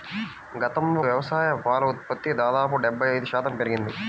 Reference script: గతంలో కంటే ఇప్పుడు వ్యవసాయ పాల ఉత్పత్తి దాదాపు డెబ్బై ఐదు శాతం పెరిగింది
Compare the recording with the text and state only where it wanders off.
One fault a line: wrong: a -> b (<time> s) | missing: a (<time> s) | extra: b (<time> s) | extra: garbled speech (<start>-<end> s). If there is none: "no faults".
missing: కంటే ఇప్పుడు (1.0 s)